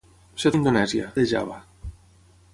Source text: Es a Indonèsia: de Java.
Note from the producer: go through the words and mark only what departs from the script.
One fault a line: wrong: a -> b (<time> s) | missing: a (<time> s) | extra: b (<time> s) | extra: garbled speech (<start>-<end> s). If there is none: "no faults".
no faults